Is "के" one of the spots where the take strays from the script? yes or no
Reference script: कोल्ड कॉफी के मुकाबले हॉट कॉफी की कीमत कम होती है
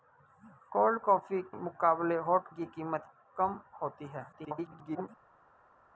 yes